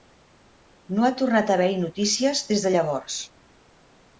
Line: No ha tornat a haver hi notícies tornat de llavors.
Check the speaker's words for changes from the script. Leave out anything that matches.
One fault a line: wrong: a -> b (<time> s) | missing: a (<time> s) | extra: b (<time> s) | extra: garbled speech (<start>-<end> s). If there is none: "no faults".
wrong: tornat -> des (2.5 s)